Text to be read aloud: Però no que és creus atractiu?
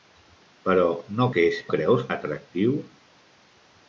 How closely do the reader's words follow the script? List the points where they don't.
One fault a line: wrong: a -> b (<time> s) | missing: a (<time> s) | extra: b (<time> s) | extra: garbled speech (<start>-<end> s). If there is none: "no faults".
no faults